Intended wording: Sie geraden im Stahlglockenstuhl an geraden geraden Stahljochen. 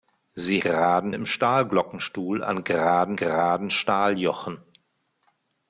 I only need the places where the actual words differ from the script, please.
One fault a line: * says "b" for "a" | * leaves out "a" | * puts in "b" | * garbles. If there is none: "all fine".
all fine